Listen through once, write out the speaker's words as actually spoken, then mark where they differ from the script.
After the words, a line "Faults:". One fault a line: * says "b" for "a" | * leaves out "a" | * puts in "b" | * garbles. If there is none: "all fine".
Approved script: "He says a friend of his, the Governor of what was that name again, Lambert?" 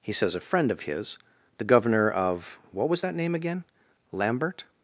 "He says a friend of his, the Governor of what was that name again, Lambert?"
Faults:
all fine